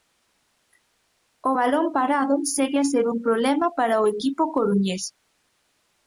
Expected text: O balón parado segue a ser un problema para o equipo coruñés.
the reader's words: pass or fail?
pass